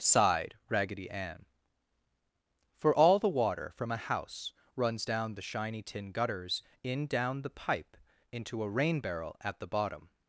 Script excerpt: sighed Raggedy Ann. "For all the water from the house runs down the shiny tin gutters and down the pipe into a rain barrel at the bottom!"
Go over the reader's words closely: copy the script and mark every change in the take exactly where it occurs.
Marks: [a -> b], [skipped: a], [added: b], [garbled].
sighed Raggedy Ann. "For all the water from [the -> a] house runs down the shiny tin gutters [and -> in] down the pipe into a rain barrel at the bottom!"